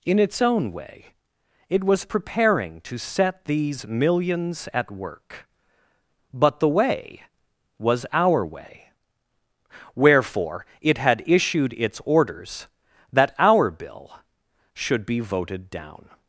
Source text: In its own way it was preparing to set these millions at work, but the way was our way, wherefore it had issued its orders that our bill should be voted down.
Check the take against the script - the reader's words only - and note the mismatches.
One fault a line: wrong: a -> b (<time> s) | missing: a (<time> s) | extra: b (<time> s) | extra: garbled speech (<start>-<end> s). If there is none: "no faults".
no faults